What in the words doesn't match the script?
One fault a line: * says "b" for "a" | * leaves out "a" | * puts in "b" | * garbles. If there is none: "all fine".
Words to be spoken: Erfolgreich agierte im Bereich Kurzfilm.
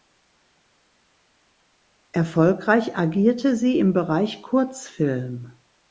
* puts in "sie"